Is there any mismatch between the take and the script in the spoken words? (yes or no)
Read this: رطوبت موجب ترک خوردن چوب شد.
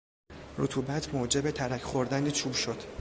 no